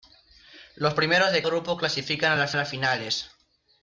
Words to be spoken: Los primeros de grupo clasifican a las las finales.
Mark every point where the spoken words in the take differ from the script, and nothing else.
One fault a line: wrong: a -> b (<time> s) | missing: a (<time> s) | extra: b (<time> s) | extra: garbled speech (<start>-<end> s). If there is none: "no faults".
no faults